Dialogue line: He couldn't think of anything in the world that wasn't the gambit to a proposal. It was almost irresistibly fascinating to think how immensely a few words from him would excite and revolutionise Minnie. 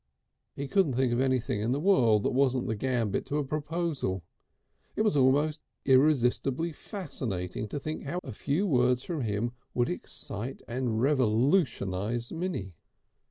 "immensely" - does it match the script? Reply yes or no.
no